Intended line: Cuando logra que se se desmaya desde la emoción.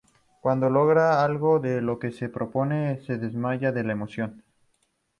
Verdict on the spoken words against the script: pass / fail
fail